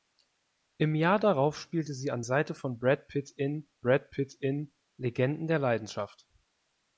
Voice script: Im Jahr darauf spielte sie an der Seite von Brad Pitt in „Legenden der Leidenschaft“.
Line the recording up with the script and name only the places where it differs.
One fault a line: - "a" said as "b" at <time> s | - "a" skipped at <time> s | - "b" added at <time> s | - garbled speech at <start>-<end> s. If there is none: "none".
- "der" skipped at 2.2 s
- "Brad Pitt in" added at 3.8 s